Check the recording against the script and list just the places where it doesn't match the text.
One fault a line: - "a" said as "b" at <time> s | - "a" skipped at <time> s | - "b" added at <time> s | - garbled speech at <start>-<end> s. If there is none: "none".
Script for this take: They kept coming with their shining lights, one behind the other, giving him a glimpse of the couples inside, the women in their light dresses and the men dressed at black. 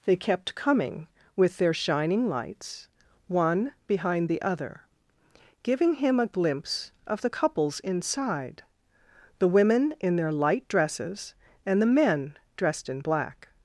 - "at" said as "in" at 12.9 s